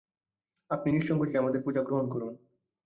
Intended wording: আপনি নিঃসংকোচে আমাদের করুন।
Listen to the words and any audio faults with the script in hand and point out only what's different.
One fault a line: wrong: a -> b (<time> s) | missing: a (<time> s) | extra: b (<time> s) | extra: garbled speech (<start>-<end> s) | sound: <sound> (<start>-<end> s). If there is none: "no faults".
extra: পূজা গ্রহণ (1.6 s)